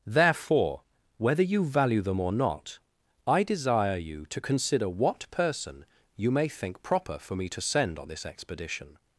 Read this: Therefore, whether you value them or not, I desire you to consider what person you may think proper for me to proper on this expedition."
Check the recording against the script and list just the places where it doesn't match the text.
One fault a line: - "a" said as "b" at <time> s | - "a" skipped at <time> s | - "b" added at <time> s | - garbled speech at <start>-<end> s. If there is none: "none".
- "proper" said as "send" at 7.6 s